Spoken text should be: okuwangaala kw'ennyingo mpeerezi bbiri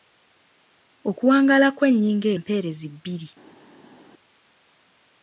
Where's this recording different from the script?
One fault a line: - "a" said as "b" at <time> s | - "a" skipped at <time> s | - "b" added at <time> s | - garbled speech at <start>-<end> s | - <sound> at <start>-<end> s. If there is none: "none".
none